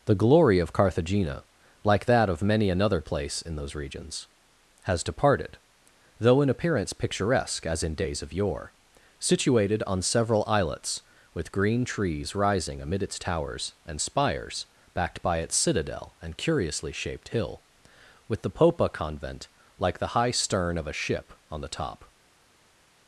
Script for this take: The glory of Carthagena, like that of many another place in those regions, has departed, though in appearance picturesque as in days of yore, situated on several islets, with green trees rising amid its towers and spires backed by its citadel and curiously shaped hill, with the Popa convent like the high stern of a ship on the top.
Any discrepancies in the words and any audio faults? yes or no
no